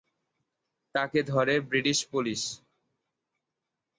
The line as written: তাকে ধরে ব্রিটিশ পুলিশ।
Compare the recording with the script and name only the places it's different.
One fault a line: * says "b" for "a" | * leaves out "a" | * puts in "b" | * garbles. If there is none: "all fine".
all fine